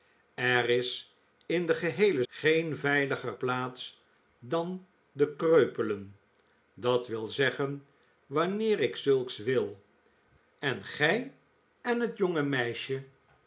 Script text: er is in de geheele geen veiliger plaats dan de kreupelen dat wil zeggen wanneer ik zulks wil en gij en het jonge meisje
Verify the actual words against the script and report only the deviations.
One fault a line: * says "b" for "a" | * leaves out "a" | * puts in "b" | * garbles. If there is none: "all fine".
all fine